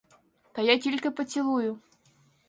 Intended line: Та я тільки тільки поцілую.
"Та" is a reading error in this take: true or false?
false